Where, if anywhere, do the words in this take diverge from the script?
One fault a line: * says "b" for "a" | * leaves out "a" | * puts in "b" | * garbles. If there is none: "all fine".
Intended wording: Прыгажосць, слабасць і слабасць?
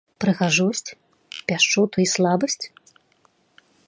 * says "пяшчоту" for "слабасць"